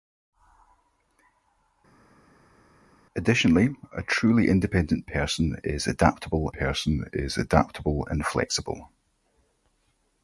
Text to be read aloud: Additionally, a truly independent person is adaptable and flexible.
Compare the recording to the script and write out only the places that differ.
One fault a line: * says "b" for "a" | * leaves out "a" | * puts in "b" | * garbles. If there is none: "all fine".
* puts in "person is adaptable"